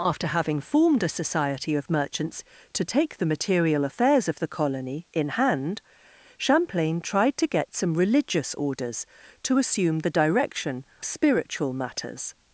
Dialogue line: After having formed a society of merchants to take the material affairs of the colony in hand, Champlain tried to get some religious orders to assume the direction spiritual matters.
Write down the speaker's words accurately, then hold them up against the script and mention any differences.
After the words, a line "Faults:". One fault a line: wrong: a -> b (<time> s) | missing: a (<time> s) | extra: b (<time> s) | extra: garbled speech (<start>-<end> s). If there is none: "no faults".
After having formed a society of merchants to take the material affairs of the colony in hand, Champlain tried to get some religious orders to assume the direction spiritual matters.
Faults:
no faults